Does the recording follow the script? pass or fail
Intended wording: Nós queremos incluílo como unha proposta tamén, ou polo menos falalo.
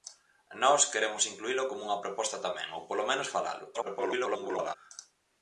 fail